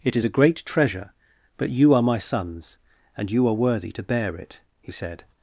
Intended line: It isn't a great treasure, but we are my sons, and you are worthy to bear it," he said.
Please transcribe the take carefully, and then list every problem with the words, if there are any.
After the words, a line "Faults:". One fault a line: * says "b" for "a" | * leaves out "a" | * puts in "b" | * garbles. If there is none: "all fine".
It is a great treasure, but you are my sons, and you are worthy to bear it," he said.
Faults:
* says "is" for "isn't"
* says "you" for "we"